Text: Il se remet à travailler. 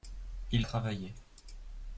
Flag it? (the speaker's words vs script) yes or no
yes